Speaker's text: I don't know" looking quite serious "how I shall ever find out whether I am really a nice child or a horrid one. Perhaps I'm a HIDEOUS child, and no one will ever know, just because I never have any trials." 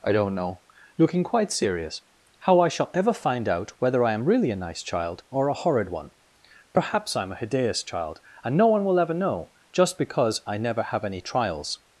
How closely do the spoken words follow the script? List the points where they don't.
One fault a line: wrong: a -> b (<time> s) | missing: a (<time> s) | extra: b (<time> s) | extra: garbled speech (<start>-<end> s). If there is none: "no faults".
no faults